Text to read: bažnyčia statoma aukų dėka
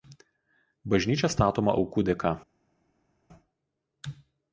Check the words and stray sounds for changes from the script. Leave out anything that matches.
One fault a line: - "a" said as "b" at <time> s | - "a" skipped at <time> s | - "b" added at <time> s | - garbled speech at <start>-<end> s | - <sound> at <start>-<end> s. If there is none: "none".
none